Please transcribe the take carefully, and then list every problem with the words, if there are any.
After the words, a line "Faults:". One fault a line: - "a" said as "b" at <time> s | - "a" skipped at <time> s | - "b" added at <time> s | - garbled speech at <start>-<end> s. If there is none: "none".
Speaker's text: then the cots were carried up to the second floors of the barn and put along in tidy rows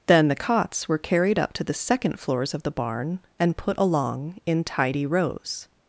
then the cots were carried up to the second floors of the barn and put along in tidy rows
Faults:
none